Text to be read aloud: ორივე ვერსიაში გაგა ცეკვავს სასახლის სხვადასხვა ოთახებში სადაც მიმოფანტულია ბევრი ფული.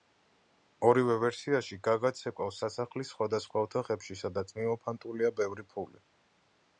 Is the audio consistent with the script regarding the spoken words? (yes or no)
yes